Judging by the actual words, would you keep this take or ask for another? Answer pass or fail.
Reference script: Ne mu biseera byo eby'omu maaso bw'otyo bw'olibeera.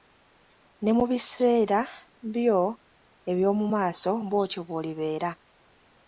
pass